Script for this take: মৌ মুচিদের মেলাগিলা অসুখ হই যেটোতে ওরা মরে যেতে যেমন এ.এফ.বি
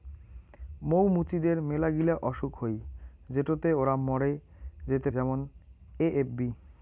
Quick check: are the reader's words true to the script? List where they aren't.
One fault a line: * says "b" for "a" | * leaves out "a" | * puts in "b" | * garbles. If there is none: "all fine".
all fine